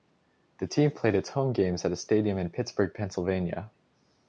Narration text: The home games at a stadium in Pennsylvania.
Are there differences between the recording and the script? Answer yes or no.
yes